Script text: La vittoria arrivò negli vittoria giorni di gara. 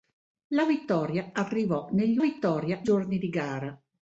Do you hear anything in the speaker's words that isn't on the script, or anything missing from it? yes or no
no